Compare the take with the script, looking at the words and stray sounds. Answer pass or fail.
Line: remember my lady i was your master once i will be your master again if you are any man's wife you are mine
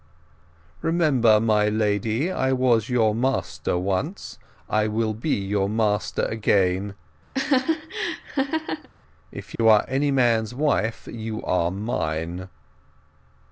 fail